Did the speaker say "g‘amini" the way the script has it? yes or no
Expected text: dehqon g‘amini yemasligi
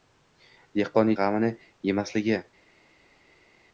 yes